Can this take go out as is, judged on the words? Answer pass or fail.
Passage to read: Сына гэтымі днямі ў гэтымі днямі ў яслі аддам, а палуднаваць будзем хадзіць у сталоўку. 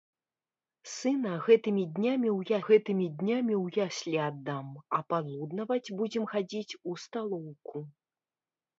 pass